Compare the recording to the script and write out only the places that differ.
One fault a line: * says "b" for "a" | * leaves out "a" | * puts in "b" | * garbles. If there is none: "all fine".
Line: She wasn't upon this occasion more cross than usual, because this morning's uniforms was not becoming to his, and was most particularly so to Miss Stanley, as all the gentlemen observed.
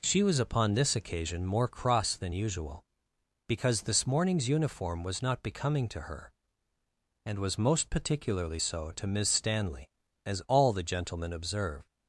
* says "was" for "wasn't"
* says "uniform" for "uniforms"
* says "her" for "his"